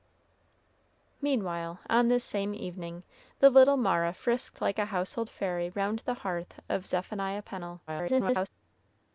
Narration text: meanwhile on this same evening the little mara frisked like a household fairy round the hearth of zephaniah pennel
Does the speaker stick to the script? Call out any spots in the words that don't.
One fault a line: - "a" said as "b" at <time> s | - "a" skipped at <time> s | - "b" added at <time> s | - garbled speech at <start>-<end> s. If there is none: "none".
- garbled speech at 7.9-8.5 s